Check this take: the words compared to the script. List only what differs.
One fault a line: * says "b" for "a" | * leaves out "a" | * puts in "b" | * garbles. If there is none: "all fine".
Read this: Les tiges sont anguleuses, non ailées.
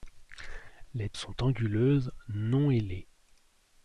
* leaves out "tiges"